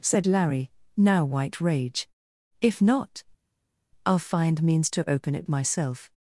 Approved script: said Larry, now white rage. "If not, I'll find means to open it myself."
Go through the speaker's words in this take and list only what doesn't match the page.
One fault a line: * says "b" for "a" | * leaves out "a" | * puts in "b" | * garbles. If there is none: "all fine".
all fine